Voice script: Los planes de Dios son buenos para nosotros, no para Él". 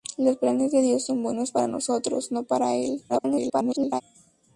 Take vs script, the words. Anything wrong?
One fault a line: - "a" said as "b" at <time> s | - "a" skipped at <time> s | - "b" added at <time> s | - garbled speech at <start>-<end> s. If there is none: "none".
- garbled speech at 3.1-4.0 s